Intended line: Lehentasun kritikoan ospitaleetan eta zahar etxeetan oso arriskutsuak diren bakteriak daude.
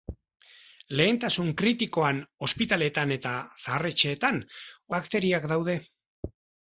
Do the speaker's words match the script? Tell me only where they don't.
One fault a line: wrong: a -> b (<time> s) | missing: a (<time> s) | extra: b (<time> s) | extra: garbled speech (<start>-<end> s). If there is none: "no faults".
missing: oso arriskutsuak diren (4.4 s)